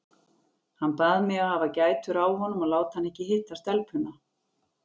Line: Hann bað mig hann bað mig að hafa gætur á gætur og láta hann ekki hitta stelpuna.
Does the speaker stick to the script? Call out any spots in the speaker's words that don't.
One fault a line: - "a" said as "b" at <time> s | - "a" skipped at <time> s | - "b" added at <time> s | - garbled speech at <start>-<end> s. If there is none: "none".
- "hann bað mig" skipped at 1.4 s
- "gætur" said as "honum" at 2.4 s